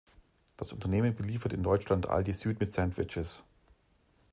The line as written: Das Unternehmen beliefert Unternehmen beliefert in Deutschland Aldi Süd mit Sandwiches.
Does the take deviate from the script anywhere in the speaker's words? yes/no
yes